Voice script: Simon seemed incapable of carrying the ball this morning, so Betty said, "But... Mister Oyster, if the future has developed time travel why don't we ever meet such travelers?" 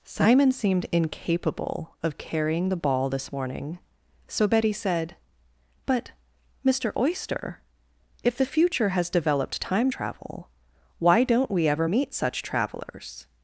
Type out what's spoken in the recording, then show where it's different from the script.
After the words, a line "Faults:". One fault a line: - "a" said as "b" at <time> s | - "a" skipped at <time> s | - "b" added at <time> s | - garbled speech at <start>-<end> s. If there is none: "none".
Simon seemed incapable of carrying the ball this morning, so Betty said, "But... Mister Oyster, if the future has developed time travel why don't we ever meet such travelers?"
Faults:
none